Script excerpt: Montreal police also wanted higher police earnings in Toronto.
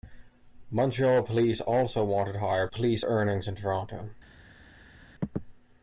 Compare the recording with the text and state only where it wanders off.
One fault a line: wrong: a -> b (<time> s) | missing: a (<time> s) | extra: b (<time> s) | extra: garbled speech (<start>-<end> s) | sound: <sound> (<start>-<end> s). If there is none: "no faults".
no faults